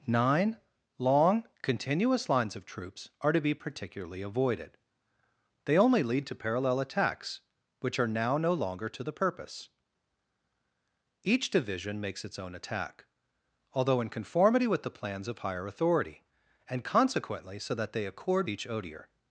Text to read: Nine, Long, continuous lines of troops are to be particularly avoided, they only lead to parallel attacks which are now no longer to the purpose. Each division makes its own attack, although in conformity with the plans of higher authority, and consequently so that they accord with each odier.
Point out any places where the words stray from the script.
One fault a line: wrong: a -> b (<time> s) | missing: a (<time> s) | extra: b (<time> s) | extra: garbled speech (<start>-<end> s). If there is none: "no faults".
missing: with (18.5 s)